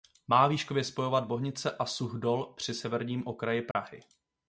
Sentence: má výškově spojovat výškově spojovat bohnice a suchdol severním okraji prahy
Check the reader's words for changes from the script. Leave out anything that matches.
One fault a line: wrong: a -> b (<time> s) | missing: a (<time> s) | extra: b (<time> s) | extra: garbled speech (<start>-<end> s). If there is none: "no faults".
missing: výškově spojovat (1.2 s)
extra: při (2.6 s)